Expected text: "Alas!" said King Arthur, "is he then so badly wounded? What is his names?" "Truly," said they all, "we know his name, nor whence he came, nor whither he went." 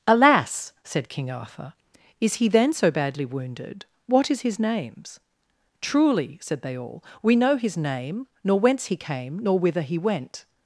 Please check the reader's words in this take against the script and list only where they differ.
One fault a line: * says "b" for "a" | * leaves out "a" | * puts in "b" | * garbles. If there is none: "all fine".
all fine